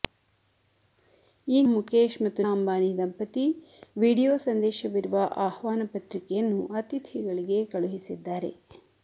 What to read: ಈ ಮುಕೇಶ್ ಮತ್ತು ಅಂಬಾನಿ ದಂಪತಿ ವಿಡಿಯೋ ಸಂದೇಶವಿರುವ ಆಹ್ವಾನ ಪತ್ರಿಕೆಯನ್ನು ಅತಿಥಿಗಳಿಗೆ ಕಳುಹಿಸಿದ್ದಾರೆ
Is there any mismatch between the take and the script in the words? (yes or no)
no